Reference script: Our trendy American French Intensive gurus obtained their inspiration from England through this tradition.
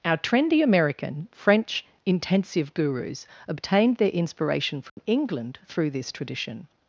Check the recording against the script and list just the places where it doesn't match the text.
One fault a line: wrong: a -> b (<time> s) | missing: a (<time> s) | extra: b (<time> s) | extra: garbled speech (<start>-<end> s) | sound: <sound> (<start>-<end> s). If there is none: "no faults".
sound: dropout (4.9-5.0 s)